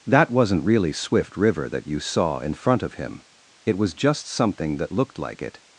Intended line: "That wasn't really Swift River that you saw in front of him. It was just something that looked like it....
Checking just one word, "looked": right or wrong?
right